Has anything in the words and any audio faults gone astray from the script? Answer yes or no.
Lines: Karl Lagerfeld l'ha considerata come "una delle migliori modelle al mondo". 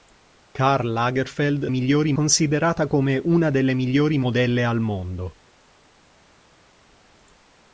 yes